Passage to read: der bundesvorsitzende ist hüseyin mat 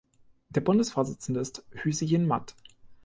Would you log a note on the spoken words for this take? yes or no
no